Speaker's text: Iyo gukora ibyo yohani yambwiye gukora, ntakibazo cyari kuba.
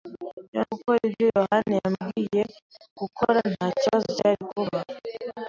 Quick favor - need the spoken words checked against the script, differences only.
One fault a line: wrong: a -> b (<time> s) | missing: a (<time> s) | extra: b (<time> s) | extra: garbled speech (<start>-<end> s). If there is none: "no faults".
no faults